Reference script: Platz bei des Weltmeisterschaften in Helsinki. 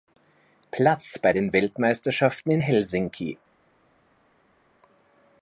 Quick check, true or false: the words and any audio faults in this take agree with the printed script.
false